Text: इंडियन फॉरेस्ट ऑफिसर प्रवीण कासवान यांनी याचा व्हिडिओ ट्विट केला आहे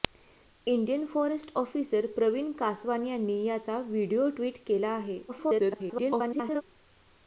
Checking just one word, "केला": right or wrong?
right